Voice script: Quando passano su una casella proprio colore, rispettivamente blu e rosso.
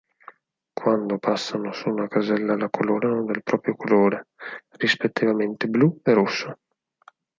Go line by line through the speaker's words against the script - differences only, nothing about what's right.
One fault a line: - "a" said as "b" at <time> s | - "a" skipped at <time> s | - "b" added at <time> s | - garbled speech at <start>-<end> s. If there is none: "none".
- "la colorano del" added at 2.5 s